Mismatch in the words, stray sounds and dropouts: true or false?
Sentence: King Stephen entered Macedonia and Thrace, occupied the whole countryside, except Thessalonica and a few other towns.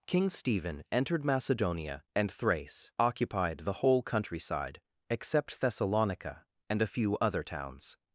false